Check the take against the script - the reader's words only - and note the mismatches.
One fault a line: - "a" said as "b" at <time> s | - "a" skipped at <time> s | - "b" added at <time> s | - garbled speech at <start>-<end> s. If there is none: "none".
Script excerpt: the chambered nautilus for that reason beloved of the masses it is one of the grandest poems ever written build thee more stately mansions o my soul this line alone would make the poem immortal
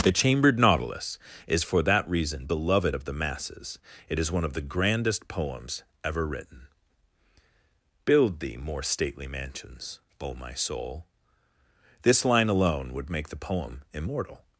- "is" added at 1.4 s